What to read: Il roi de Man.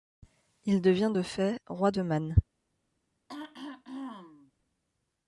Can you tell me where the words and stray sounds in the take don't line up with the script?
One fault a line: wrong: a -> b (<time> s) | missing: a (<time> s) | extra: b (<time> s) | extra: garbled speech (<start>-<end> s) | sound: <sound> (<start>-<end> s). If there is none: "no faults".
extra: devient de fait (0.8 s)
sound: throat clearing (3.3-4.5 s)